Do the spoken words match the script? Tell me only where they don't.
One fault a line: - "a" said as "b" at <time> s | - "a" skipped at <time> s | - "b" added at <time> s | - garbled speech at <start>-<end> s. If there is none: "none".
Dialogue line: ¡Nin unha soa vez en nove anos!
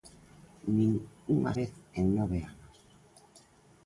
- "soa" skipped at 1.5 s